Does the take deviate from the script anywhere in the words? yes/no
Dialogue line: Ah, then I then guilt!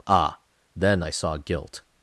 yes